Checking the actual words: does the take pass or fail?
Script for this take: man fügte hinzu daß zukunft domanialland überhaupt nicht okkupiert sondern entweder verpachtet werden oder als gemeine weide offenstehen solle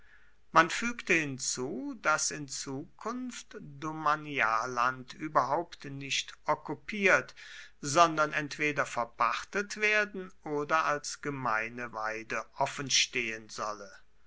fail